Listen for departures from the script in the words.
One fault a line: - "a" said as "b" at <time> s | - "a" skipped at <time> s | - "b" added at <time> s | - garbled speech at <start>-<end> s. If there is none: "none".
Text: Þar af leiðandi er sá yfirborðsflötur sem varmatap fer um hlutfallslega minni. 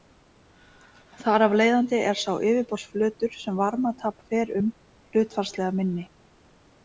none